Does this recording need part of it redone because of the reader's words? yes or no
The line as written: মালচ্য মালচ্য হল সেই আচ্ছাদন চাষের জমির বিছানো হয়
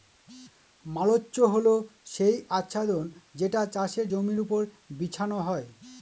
yes